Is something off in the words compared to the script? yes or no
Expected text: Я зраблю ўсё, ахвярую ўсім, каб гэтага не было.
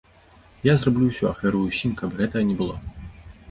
no